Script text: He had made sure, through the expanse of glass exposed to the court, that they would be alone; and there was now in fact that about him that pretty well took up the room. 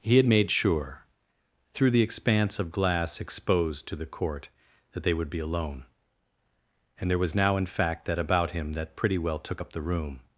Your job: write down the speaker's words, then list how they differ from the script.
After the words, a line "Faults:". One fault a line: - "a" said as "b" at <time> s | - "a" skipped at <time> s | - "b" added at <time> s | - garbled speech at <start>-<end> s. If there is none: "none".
He had made sure, through the expanse of glass exposed to the court, that they would be alone; and there was now in fact that about him that pretty well took up the room.
Faults:
none